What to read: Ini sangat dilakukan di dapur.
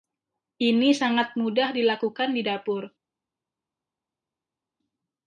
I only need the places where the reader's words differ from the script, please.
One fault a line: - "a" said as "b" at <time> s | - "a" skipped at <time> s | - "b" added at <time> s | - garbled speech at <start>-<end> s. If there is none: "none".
- "mudah" added at 1.4 s